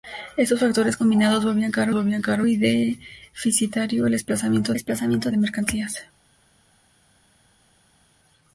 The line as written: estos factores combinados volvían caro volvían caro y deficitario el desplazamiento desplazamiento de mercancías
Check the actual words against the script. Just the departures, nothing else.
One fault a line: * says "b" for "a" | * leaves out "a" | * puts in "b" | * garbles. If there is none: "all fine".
all fine